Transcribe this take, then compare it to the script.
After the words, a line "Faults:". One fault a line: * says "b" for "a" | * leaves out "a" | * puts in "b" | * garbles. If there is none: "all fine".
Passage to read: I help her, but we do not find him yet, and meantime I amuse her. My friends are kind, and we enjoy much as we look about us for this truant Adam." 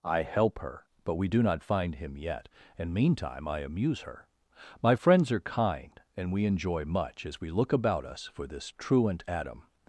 I help her, but we do not find him yet, and meantime I amuse her. My friends are kind, and we enjoy much as we look about us for this truant Adam."
Faults:
all fine